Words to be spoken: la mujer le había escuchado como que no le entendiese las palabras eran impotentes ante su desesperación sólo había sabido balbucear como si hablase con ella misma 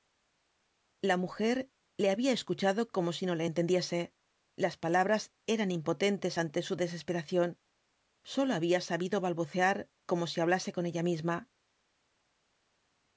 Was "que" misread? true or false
true